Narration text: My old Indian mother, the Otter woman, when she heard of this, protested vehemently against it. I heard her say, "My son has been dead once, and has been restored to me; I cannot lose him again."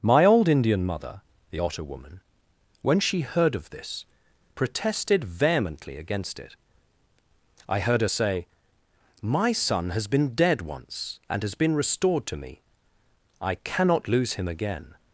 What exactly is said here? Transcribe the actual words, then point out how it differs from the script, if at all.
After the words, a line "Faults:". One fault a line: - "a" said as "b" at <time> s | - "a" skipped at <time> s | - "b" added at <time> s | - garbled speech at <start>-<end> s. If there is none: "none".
My old Indian mother, the Otter woman, when she heard of this, protested vehemently against it. I heard her say, "My son has been dead once, and has been restored to me; I cannot lose him again."
Faults:
none